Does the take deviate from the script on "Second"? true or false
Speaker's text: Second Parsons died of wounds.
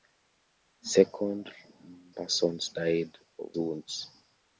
false